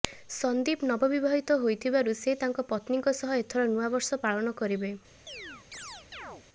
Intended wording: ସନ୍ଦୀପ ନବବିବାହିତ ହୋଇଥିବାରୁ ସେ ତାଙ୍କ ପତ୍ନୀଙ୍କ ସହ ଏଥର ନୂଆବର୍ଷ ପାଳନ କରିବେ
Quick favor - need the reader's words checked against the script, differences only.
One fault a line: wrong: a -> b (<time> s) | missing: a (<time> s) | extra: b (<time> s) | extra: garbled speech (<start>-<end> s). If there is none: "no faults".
no faults